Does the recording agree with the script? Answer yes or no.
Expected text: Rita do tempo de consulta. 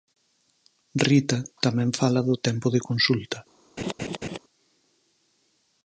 no